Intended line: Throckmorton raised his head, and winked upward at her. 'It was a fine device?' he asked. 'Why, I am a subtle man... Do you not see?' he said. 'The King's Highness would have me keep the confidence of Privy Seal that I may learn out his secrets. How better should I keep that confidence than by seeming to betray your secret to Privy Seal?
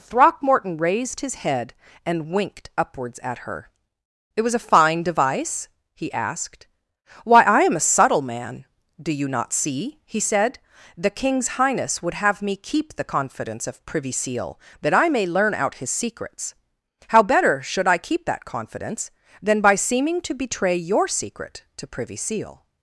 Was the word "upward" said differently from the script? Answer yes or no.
yes